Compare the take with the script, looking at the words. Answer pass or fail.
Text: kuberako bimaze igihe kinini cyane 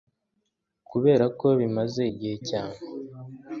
fail